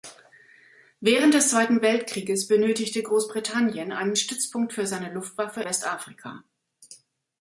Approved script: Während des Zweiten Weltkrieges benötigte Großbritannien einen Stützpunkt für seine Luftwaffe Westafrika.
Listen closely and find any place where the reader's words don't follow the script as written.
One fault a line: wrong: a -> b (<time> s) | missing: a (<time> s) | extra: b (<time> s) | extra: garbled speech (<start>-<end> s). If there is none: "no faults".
no faults